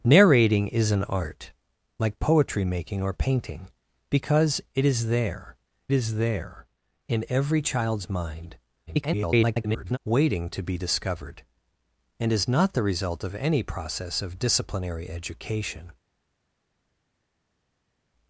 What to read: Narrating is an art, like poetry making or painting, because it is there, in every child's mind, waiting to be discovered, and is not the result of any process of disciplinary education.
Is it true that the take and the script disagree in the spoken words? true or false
true